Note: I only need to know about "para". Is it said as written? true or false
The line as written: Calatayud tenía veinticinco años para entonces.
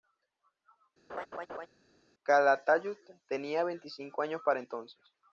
true